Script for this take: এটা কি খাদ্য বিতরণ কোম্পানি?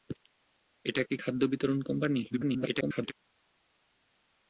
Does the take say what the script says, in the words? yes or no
no